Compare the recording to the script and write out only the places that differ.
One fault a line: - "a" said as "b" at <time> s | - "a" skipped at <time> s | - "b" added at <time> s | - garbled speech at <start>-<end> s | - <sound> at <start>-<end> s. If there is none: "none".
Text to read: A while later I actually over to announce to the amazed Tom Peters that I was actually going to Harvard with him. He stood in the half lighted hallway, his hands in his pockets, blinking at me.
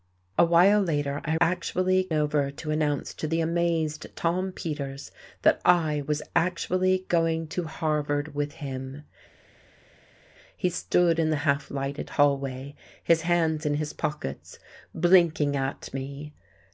none